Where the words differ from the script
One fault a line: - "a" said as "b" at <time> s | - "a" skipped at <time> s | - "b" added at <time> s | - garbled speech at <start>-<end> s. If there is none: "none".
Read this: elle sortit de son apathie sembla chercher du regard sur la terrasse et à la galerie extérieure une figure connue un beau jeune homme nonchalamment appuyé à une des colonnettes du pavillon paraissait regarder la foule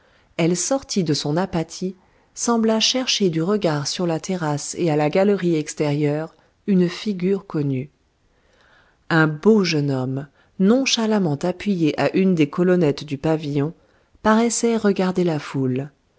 none